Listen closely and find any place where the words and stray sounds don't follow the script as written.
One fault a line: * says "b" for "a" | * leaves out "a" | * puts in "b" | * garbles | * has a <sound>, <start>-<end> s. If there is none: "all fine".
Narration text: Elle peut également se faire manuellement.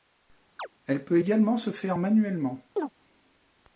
* has a chirp, 0.6-0.7 s
* has a chirp, 2.8-2.9 s